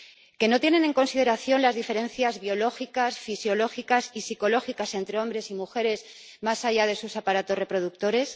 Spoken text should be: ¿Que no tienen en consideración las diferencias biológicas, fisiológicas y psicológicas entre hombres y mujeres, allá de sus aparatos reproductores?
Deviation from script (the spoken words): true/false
true